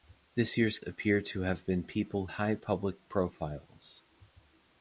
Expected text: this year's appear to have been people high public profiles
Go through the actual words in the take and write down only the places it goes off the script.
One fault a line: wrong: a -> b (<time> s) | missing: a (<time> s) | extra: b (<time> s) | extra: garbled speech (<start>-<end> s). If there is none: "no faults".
no faults